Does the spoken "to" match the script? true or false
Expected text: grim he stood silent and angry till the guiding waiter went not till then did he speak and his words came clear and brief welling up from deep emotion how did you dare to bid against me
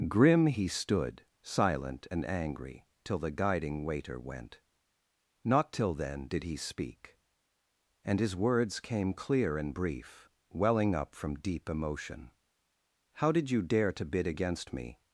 true